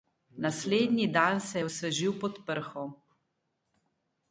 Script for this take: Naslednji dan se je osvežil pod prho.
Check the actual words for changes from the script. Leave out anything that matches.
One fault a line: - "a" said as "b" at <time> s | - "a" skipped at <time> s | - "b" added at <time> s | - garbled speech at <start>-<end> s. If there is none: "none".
none